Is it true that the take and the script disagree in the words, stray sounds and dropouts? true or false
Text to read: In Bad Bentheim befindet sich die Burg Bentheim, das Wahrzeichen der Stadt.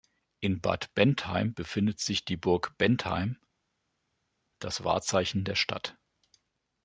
false